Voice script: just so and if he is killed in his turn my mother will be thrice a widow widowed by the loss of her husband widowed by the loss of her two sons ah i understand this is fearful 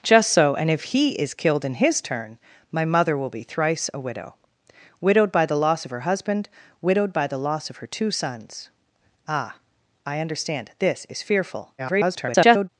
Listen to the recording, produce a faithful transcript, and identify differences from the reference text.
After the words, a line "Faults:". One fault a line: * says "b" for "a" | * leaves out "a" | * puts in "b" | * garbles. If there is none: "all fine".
just so and if he is killed in his turn my mother will be thrice a widow widowed by the loss of her husband widowed by the loss of her two sons ah i understand this is fearful [garbled]
Faults:
* garbles